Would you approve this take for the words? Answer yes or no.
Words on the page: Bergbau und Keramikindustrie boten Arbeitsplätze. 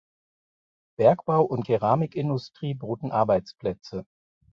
yes